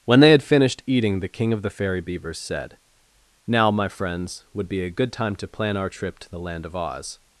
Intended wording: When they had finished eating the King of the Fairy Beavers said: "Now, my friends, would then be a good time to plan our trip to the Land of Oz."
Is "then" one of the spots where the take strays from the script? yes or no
yes